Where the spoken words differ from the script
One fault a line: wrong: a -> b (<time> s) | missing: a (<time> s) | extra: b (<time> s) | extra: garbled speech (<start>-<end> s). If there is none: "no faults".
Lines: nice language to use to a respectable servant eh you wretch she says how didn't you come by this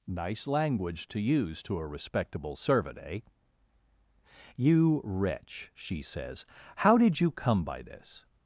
wrong: didn't -> did (7.0 s)